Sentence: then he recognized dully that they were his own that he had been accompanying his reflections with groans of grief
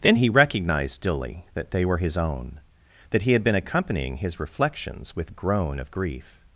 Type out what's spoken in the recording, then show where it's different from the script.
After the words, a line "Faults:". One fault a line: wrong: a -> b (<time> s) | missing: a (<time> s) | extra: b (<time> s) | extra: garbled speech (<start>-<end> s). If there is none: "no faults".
then he recognized dully that they were his own that he had been accompanying his reflections with groan of grief
Faults:
wrong: groans -> groan (5.3 s)